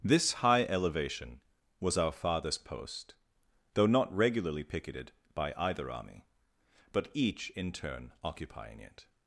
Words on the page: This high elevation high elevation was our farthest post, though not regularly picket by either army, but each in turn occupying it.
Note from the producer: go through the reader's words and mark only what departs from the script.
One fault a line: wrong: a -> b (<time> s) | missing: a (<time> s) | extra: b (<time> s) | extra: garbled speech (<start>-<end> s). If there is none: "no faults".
missing: high elevation (1.4 s)
wrong: picket -> picketed (4.6 s)